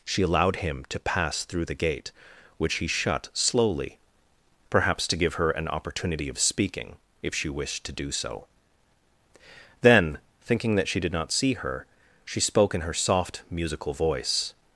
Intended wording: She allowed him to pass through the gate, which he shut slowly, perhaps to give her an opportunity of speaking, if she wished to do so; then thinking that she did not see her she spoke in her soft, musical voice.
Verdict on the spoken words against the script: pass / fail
pass